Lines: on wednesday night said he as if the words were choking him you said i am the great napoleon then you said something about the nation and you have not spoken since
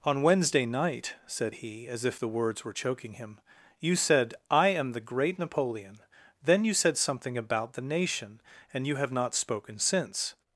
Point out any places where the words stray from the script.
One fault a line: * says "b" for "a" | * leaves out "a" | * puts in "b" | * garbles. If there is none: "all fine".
all fine